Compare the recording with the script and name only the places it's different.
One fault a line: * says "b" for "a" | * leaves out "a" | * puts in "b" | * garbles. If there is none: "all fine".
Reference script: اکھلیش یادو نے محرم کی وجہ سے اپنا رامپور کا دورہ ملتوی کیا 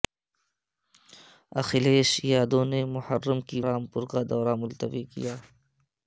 * leaves out "وجہ سے اپنا"